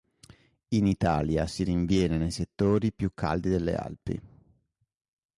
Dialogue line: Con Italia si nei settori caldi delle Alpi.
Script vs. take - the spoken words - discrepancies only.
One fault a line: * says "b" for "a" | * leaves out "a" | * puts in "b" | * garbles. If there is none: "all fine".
* says "In" for "Con"
* puts in "rinviene"
* puts in "più"